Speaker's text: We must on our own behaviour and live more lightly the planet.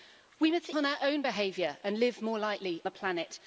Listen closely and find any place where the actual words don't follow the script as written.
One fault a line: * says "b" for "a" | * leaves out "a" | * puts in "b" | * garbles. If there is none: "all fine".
all fine